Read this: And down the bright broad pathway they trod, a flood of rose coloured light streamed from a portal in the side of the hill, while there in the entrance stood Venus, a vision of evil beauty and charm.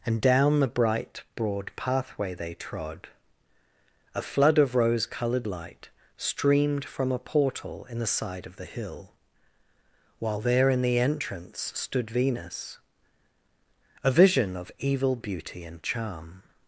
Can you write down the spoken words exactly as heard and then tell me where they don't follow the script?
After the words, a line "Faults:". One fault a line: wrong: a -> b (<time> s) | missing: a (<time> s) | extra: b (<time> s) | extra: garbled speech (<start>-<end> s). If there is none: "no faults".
And down the bright broad pathway they trod, a flood of rose coloured light streamed from a portal in the side of the hill, while there in the entrance stood Venus, a vision of evil beauty and charm.
Faults:
no faults